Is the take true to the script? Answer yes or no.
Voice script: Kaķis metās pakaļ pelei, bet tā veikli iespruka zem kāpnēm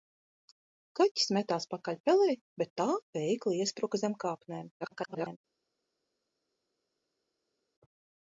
no